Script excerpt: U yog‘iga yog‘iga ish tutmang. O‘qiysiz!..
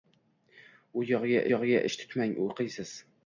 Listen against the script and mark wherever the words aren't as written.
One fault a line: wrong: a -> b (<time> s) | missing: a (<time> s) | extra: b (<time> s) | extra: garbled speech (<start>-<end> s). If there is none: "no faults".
no faults